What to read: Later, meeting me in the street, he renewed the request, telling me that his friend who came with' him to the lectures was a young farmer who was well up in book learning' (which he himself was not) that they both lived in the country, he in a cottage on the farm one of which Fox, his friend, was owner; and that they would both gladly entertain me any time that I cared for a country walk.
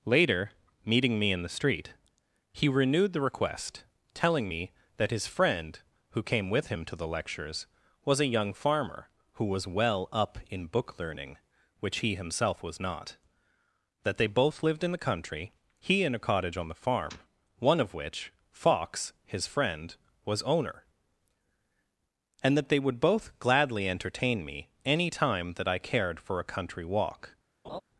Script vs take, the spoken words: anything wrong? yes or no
no